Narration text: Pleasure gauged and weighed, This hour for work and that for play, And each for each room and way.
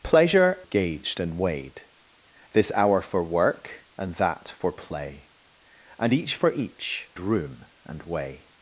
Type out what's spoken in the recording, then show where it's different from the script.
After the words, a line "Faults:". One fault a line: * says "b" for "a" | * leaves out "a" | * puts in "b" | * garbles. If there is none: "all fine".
Pleasure gauged and weighed, This hour for work and that for play, And each for each room and way.
Faults:
all fine